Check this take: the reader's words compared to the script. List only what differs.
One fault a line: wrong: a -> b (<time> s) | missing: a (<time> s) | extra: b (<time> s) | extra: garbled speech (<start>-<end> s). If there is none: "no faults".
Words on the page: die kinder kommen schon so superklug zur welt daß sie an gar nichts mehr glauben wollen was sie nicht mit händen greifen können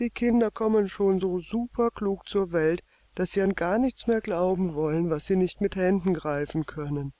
no faults